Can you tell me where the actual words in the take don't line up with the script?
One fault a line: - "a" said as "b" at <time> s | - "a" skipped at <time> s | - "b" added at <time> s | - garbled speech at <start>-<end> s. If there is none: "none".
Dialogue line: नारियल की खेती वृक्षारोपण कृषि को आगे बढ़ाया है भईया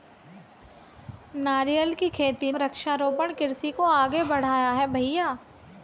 none